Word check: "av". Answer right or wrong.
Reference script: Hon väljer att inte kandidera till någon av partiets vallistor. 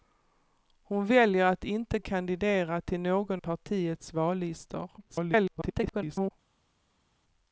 wrong